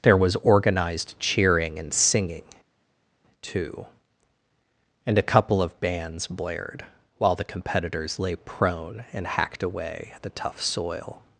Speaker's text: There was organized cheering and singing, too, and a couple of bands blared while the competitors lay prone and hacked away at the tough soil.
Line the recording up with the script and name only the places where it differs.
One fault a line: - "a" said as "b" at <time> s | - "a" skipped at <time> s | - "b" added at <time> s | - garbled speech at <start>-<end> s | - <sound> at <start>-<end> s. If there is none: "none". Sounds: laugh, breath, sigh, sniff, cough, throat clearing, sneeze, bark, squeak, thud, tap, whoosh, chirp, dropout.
none